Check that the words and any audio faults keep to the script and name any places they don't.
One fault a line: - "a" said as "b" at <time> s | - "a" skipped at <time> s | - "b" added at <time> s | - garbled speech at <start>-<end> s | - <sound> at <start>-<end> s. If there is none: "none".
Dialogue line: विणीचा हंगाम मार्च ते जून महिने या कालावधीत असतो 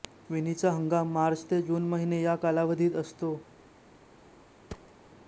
- thud at 4.7-4.9 s